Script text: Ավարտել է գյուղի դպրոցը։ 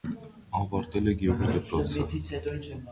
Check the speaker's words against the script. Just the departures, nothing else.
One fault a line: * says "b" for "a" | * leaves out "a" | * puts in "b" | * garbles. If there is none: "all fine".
all fine